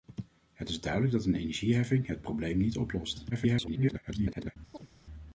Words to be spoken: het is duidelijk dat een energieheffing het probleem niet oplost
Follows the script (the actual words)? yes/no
no